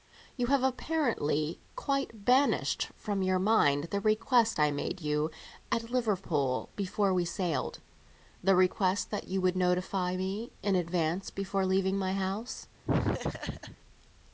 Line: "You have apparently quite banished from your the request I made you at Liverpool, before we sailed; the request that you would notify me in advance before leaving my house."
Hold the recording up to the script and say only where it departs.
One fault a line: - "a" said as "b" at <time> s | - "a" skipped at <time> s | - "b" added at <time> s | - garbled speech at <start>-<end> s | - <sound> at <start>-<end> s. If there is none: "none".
- "mind" added at 3.4 s
- laugh at 12.8-13.8 s